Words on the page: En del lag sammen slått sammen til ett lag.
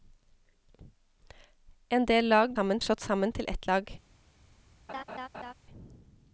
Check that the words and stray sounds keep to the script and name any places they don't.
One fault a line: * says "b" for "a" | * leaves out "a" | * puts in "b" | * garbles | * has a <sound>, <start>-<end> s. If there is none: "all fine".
* has a laugh, 4.9-5.5 s